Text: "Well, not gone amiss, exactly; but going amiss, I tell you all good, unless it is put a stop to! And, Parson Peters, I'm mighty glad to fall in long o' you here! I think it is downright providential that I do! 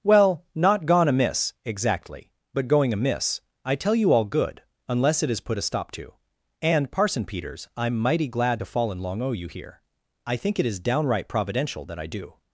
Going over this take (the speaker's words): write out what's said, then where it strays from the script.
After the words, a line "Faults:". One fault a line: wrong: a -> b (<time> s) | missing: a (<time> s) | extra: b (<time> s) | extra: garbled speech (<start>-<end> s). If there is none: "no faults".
"Well, not gone amiss, exactly; but going amiss, I tell you all good, unless it is put a stop to! And, Parson Peters, I'm mighty glad to fall in long o' you here! I think it is downright providential that I do!
Faults:
no faults